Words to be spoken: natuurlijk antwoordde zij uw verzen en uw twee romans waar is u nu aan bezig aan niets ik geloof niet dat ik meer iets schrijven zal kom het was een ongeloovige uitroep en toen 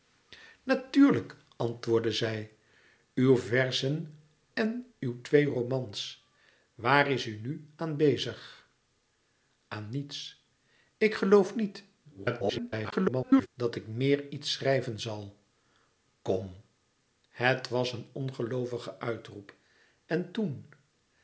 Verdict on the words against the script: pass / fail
fail